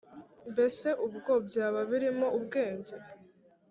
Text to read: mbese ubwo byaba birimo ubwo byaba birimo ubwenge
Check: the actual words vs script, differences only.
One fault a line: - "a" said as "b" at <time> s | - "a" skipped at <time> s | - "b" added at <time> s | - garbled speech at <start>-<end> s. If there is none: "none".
- "ubwo byaba birimo" skipped at 2.3 s